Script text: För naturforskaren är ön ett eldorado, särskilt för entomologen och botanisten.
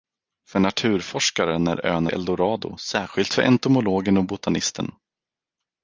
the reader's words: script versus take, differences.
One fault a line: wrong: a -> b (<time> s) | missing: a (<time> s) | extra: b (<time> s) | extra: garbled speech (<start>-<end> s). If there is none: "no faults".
missing: ett (2.1 s)